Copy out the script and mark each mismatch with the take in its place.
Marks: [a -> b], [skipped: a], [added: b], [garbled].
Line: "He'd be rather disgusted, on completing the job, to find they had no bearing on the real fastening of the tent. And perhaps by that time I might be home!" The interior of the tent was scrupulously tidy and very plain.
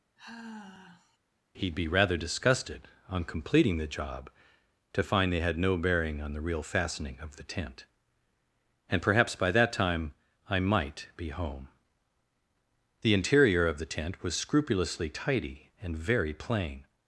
"He'd be rather disgusted, on completing the job, to find they had no bearing on the real fastening of the tent. And perhaps by that time I might be home!" The interior of the tent was scrupulously tidy and very plain.